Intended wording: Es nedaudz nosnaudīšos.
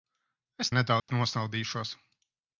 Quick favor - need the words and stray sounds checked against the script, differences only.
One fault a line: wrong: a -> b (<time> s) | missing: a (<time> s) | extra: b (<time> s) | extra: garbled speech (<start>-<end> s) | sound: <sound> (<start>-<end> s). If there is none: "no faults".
sound: dropout (1.0-1.1 s)